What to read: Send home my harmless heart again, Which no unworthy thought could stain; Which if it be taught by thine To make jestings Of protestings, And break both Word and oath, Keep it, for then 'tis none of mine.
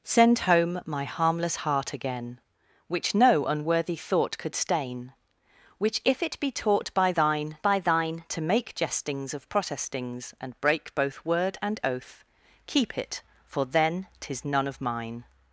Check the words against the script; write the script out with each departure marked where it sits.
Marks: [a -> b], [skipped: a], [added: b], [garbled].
Send home my harmless heart again, Which no unworthy thought could stain; Which if it be taught by thine [added: by thine] To make jestings Of protestings, And break both Word and oath, Keep it, for then 'tis none of mine.